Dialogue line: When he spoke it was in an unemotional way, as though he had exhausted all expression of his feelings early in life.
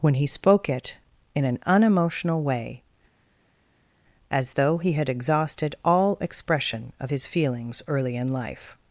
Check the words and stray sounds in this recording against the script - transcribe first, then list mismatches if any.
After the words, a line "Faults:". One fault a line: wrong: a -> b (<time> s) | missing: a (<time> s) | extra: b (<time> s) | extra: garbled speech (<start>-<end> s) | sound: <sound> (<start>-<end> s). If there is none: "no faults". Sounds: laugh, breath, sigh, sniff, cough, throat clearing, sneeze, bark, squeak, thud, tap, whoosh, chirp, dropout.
When he spoke it in an unemotional way, as though he had exhausted all expression of his feelings early in life.
Faults:
missing: was (0.9 s)